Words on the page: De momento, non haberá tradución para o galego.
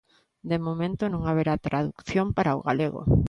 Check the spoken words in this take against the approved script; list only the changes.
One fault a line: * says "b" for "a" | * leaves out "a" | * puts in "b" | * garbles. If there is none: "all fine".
all fine